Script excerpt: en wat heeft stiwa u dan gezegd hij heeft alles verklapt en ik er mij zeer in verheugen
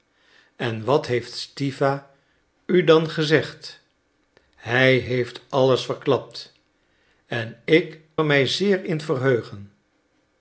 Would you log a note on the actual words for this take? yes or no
no